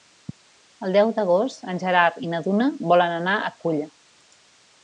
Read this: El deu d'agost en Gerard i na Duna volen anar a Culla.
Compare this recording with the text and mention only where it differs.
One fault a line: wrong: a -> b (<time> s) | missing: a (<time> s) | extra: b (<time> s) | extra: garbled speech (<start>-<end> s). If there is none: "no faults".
no faults